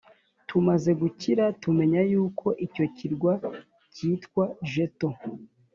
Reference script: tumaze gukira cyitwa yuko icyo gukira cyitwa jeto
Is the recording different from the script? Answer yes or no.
yes